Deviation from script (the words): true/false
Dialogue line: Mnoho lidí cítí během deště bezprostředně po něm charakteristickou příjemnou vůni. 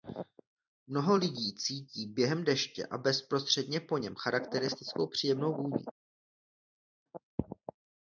true